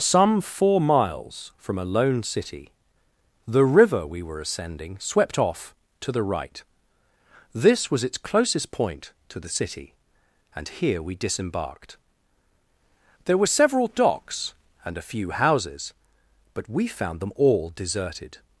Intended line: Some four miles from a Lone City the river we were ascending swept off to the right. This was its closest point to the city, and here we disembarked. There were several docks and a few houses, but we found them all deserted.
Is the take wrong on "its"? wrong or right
right